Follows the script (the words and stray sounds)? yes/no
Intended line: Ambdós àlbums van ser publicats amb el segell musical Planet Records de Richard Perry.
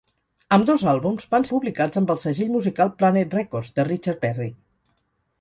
no